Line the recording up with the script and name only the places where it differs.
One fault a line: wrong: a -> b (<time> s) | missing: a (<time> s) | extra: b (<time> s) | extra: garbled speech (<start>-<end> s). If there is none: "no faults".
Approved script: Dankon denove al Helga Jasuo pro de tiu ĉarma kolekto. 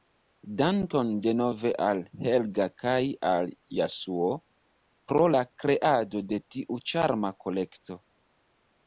extra: kaj al (2.8 s)
extra: la kreado (5.3 s)